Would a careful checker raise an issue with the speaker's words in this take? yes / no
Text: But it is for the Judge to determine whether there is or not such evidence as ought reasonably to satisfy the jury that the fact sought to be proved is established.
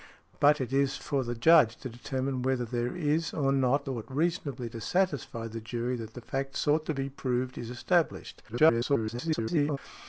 yes